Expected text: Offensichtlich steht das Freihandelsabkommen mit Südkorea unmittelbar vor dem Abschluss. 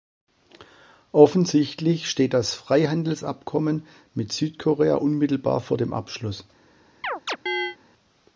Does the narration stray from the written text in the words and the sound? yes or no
yes